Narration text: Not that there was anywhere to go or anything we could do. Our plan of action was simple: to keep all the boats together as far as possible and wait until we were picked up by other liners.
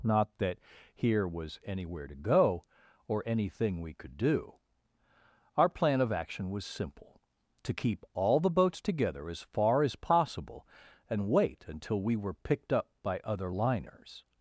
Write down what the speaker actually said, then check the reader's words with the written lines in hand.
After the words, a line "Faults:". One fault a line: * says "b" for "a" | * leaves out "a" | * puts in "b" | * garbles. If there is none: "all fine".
Not that here was anywhere to go or anything we could do. Our plan of action was simple: to keep all the boats together as far as possible and wait until we were picked up by other liners.
Faults:
* says "here" for "there"